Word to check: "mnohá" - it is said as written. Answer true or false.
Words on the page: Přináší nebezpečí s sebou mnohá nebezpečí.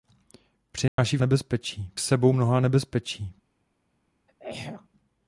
true